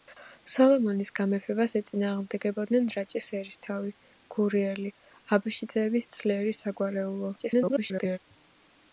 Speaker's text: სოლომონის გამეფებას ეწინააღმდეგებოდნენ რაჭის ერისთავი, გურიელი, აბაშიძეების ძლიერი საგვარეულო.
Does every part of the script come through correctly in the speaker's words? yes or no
no